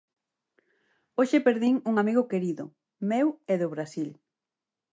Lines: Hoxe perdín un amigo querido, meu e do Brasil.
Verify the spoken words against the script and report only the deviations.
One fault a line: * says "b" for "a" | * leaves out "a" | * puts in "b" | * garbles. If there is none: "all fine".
all fine